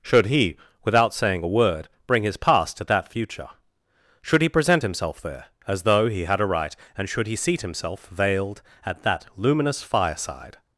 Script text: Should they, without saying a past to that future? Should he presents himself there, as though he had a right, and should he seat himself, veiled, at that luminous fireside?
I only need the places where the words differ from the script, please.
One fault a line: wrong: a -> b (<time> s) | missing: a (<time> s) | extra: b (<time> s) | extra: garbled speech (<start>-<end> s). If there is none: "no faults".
wrong: they -> he (0.3 s)
extra: word bring his (1.5 s)
wrong: presents -> present (4.5 s)